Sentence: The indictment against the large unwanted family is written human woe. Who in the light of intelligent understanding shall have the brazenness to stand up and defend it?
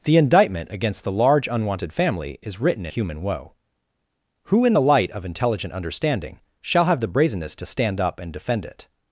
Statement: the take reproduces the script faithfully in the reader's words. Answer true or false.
true